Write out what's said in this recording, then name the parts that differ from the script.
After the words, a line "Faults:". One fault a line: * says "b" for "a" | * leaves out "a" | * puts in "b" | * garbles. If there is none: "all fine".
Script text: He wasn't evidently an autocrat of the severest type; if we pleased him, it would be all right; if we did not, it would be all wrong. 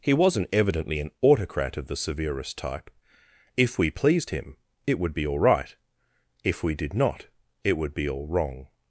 He wasn't evidently an autocrat of the severest type; if we pleased him, it would be all right; if we did not, it would be all wrong.
Faults:
all fine